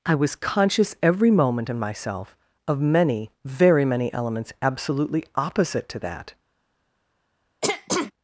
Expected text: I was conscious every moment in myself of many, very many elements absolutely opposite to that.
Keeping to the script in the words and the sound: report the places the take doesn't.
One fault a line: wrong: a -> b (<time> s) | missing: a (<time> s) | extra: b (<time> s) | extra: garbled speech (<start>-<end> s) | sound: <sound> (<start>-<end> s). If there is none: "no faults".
sound: throat clearing (7.6-8.1 s)